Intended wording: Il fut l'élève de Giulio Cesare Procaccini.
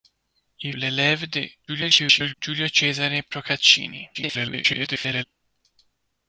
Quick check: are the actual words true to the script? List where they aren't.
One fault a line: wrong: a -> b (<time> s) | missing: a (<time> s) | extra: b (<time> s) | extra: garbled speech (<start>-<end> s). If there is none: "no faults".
missing: fut (0.7 s)
extra: garbled speech (1.7-2.3 s)
extra: garbled speech (4.1-5.2 s)